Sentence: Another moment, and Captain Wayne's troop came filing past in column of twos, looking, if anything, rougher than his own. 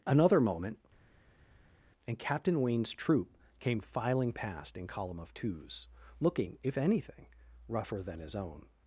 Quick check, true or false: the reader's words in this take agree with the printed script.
true